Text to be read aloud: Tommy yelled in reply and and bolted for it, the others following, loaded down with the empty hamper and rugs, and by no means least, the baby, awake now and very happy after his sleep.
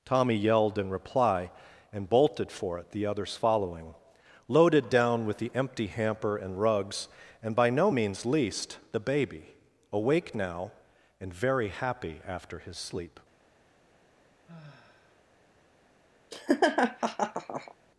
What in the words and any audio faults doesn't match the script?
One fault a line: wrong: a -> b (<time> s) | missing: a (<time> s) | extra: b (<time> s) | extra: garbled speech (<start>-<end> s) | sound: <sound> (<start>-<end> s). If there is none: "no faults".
missing: and (2.1 s)
sound: sigh (14.4-15.2 s)
sound: laugh (16.3-17.7 s)